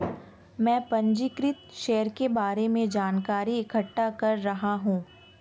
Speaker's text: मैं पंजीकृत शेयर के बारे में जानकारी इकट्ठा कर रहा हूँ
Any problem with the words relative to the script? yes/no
no